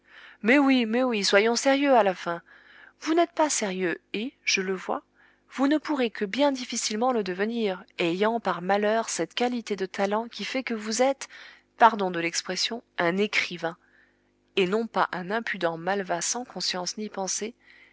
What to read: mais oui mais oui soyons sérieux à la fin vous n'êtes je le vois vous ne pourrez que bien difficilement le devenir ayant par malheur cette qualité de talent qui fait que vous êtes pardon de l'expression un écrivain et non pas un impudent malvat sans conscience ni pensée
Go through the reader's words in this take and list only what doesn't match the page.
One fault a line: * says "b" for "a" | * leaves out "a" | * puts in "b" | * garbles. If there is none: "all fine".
* puts in "pas sérieux et"